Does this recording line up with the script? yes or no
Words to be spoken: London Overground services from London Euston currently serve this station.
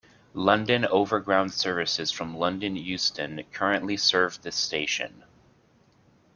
yes